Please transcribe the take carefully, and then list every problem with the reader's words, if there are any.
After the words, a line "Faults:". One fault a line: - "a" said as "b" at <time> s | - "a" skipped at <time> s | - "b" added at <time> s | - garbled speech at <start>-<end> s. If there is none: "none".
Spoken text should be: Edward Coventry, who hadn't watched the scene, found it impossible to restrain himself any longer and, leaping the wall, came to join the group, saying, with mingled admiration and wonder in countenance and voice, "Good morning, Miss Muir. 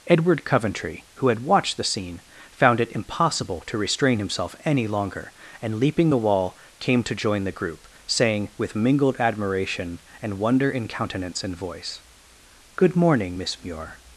Edward Coventry, who had watched the scene, found it impossible to restrain himself any longer and, leaping the wall, came to join the group, saying, with mingled admiration and wonder in countenance and voice, "Good morning, Miss Muir.
Faults:
- "hadn't" said as "had" at 1.3 s